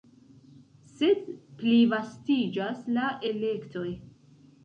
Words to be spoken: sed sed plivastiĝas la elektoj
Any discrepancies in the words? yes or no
yes